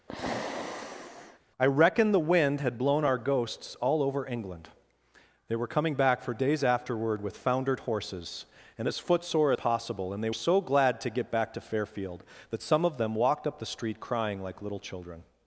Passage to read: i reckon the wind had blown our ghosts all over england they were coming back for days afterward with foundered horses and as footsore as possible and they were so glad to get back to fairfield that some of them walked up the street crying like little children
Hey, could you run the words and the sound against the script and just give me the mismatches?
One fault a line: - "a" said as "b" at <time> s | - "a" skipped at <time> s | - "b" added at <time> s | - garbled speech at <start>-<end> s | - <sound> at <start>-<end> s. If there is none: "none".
- sigh at 0.1-1.4 s
- "as" skipped at 9.5 s
- "were" skipped at 10.3 s